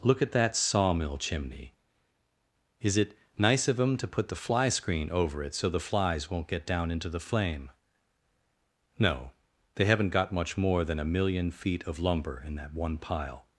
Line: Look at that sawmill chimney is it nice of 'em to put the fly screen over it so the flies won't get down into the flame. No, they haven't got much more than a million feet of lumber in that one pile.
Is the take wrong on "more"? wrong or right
right